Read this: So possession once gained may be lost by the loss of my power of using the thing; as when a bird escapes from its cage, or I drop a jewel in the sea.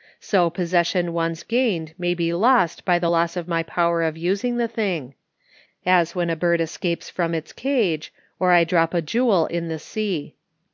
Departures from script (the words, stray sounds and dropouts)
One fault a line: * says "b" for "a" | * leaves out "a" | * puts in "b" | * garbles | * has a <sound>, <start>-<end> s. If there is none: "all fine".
all fine